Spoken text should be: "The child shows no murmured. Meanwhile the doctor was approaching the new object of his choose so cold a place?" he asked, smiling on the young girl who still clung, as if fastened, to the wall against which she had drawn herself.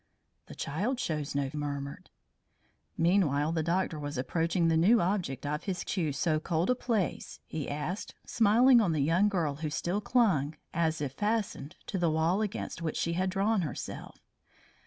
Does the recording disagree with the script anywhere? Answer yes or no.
no